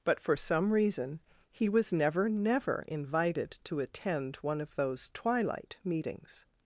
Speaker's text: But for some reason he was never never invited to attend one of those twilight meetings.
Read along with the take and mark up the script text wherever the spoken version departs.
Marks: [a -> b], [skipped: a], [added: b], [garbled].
But for some reason he was never never invited to attend one of those twilight meetings.